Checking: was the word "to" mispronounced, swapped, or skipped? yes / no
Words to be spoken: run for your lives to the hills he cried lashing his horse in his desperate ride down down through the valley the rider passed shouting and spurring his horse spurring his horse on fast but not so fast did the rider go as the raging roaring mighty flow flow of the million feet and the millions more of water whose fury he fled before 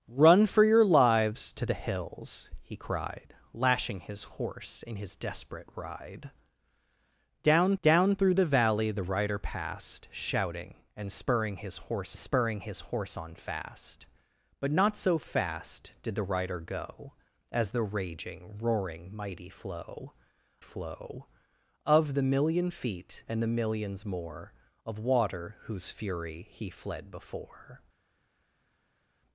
no